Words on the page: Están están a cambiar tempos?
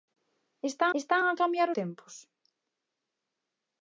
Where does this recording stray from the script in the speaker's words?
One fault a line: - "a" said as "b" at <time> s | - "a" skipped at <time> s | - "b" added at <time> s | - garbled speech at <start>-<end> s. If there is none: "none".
none